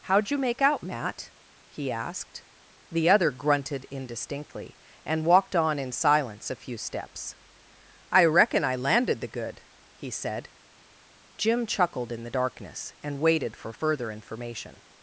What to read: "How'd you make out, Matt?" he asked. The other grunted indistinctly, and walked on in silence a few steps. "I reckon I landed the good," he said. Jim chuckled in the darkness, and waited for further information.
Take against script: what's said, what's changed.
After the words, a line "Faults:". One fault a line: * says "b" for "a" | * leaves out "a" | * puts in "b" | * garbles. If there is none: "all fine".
"How'd you make out, Matt?" he asked. The other grunted indistinctly, and walked on in silence a few steps. "I reckon I landed the good," he said. Jim chuckled in the darkness, and waited for further information.
Faults:
all fine